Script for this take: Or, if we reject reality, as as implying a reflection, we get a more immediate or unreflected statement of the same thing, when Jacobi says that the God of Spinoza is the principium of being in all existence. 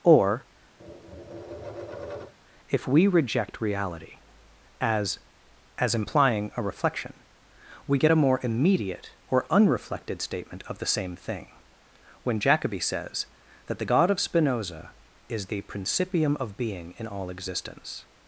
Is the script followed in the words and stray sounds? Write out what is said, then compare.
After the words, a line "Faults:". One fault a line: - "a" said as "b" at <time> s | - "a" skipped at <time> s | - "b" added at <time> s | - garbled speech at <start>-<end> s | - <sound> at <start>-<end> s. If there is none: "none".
Or, if we reject reality, as as implying a reflection, we get a more immediate or unreflected statement of the same thing, when Jacobi says that the God of Spinoza is the principium of being in all existence.
Faults:
- tap at 0.8-2.3 s